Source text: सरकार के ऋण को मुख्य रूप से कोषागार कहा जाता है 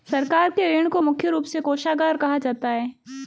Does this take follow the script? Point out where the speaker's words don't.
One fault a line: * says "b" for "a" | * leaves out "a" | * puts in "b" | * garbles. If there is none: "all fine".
all fine